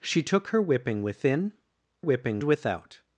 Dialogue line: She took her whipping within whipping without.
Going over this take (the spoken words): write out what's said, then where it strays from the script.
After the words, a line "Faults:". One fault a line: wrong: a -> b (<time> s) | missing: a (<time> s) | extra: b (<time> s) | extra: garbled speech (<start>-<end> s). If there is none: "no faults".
She took her whipping within whipping without.
Faults:
no faults